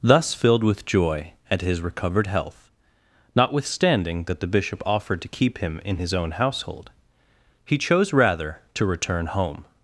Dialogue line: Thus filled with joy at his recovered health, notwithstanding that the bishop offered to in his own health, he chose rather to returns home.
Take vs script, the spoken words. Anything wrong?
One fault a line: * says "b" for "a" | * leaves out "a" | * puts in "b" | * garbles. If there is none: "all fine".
* puts in "keep him"
* says "household" for "health"
* says "return" for "returns"